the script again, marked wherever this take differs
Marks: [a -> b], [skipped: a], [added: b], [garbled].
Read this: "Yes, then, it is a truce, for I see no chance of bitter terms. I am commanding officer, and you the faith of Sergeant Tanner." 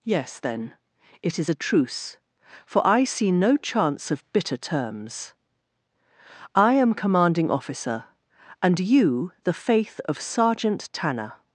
"Yes, then, it is a truce, for I see no chance of bitter terms. I am commanding officer, and you the faith of Sergeant Tanner."